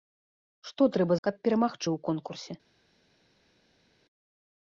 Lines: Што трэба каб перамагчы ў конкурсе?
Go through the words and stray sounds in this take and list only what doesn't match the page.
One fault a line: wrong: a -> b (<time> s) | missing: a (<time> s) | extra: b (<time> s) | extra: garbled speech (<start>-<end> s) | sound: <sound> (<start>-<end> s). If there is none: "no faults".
no faults